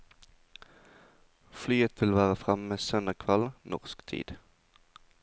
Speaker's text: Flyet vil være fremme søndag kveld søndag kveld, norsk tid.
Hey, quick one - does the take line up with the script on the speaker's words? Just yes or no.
no